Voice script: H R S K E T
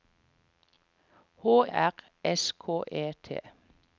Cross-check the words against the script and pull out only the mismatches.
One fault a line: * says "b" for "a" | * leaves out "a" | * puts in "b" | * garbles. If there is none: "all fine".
all fine